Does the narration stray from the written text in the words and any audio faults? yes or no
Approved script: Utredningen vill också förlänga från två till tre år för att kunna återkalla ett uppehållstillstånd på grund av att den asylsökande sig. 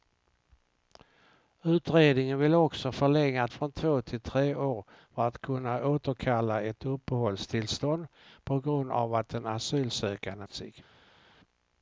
no